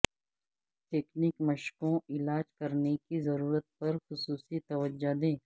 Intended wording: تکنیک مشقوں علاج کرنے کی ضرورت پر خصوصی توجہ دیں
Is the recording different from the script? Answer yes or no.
no